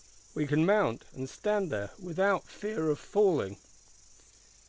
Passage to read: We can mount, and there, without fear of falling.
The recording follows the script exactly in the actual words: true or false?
false